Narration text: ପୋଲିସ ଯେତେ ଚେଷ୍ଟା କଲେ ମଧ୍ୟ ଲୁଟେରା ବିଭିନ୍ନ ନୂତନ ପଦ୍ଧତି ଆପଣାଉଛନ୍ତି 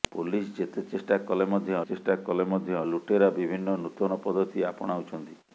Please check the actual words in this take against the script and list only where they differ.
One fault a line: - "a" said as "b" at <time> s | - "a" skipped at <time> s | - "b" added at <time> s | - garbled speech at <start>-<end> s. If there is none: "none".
- "ଚେଷ୍ଟା କଲେ ମଧ୍ୟ" added at 1.8 s